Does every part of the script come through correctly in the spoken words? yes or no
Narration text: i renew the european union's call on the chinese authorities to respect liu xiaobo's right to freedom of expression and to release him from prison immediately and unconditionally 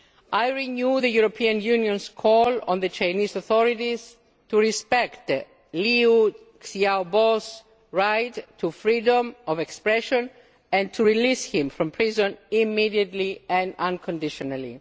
yes